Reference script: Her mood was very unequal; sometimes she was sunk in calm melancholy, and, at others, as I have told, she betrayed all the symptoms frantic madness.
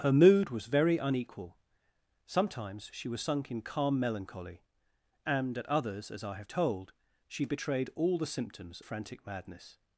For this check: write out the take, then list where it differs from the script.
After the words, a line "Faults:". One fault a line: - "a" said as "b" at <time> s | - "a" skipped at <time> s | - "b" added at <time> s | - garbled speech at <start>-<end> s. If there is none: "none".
Her mood was very unequal; sometimes she was sunk in calm melancholy, and, at others, as I have told, she betrayed all the symptoms frantic madness.
Faults:
none